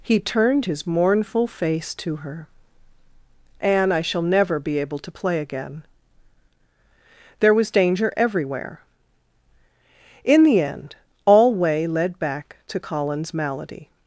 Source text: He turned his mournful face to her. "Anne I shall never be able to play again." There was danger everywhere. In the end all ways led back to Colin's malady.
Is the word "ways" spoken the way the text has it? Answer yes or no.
no